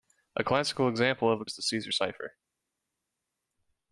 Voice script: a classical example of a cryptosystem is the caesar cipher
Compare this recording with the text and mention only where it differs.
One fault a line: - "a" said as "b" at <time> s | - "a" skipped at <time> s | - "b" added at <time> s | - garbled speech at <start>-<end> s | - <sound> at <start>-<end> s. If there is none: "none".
- "cryptosystem" skipped at 1.4 s